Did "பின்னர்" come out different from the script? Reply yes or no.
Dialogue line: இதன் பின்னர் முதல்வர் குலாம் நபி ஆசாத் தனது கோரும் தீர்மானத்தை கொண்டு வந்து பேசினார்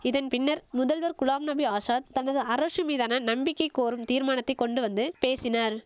no